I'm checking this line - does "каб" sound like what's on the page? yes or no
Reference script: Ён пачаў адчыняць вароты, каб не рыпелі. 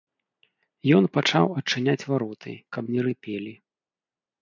yes